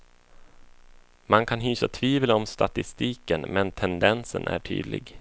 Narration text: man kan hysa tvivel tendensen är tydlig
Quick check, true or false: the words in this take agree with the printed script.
false